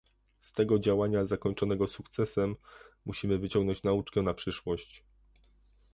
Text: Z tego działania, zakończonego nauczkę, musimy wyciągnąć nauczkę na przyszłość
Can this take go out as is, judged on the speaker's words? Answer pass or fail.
fail